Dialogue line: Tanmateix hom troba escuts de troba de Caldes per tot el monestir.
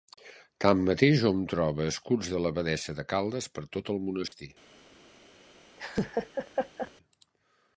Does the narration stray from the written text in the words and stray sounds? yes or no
yes